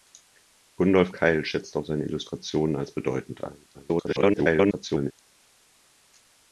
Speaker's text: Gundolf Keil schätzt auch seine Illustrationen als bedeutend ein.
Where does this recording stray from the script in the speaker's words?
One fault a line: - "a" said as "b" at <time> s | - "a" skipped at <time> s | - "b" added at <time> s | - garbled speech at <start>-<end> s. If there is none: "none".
- garbled speech at 3.7-5.1 s